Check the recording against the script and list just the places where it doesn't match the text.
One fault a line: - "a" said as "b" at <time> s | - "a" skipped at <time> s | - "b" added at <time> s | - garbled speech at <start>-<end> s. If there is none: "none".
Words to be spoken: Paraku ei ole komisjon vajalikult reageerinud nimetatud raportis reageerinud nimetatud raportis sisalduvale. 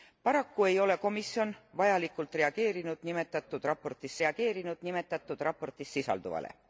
none